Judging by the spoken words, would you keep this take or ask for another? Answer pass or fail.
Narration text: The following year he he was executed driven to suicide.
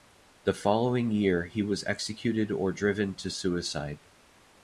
fail